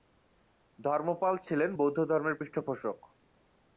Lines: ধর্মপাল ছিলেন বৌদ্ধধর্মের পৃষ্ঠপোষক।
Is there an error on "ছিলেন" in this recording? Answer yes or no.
no